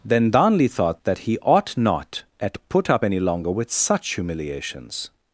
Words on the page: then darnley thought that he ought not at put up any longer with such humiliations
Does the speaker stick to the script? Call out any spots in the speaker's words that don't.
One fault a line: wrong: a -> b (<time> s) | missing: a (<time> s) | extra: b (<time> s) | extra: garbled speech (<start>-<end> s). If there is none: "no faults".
no faults